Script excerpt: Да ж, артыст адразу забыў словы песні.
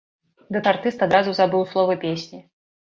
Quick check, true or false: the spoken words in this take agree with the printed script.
true